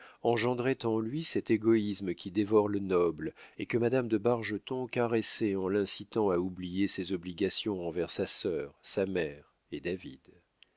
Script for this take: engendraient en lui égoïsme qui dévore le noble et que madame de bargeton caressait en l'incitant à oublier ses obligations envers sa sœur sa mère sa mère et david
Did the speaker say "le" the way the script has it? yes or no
yes